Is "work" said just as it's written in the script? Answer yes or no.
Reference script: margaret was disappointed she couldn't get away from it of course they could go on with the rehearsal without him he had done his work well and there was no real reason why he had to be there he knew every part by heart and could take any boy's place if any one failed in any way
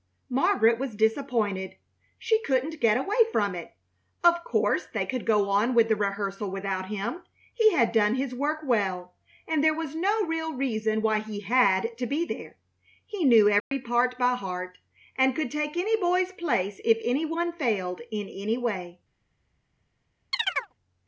yes